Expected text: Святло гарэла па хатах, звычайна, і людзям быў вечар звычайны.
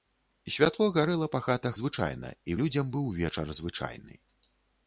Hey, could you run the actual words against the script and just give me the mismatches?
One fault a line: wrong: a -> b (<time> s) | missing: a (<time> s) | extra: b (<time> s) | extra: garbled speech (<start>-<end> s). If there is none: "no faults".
no faults